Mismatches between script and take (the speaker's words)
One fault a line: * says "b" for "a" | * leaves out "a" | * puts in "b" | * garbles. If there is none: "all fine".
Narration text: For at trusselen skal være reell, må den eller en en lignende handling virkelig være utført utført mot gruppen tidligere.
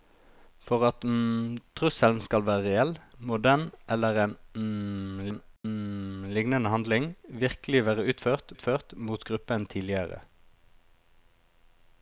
all fine